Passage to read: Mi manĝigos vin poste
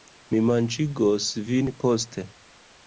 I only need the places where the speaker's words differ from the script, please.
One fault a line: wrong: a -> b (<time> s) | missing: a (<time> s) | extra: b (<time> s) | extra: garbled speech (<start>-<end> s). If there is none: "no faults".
no faults